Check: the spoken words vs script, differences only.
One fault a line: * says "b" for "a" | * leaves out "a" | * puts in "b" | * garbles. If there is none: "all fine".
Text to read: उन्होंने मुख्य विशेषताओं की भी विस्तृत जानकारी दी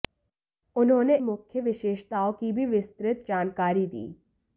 all fine